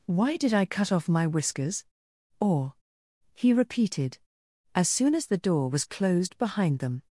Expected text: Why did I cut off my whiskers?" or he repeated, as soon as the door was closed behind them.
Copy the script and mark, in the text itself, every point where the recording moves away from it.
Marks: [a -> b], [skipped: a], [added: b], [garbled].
Why did I cut off my whiskers?" or he repeated, as soon as the door was closed behind them.